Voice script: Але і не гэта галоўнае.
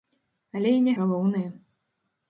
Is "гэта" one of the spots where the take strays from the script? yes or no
yes